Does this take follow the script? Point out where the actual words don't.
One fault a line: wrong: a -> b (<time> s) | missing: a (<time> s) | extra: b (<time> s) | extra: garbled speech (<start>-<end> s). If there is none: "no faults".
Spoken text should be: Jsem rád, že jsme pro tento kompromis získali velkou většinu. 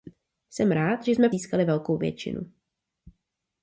missing: pro tento kompromis (1.3 s)